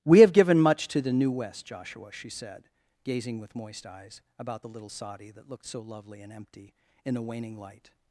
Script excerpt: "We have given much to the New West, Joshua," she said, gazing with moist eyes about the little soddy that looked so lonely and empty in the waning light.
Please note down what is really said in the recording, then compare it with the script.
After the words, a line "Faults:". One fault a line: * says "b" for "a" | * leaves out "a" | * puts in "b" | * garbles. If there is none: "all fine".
"We have given much to the New West, Joshua," she said, gazing with moist eyes about the little soddy that looked so lovely and empty in the waning light.
Faults:
* says "lovely" for "lonely"